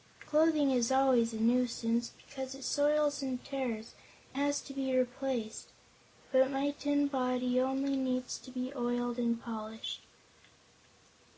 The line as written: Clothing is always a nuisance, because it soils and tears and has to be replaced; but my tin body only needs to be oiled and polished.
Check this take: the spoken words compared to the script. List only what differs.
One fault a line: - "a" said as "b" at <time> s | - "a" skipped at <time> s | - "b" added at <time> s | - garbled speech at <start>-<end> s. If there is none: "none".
- "and" skipped at 3.9 s